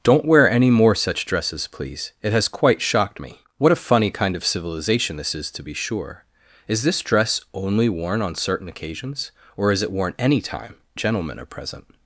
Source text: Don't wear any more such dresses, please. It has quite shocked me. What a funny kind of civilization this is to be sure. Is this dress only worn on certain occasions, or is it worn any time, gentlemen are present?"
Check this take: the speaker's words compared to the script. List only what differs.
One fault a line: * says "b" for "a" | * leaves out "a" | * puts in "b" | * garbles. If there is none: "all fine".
all fine